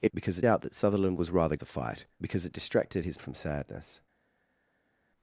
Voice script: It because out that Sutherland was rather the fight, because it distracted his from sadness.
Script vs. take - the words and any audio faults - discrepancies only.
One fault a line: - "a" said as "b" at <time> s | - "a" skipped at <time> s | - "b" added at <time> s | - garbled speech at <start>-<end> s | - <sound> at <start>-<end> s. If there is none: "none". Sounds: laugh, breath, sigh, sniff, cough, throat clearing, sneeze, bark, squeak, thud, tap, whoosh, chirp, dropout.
none